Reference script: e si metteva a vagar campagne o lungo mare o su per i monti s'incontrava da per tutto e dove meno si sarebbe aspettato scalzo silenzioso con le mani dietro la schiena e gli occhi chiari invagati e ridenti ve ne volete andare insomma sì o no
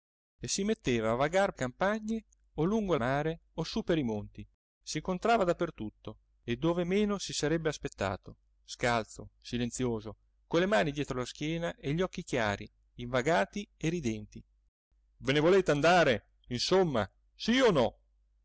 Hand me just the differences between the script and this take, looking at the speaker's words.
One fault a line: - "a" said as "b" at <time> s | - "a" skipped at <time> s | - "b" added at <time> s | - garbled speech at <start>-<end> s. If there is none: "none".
none